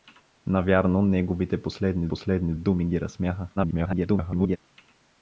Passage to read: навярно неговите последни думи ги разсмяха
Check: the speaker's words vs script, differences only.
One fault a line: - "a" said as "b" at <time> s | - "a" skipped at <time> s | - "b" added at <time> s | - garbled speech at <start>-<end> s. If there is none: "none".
- "последни" added at 2.1 s
- garbled speech at 3.6-4.6 s